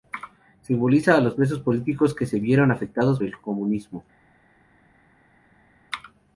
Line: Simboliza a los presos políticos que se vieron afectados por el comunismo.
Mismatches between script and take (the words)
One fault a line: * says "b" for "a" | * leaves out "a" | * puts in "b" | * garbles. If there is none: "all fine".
* leaves out "por"